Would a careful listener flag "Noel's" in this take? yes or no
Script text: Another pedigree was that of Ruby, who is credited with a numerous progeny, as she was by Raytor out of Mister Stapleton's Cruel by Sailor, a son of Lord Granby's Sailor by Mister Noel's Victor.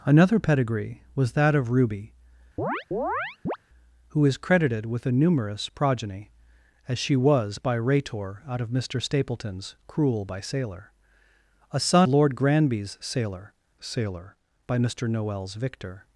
no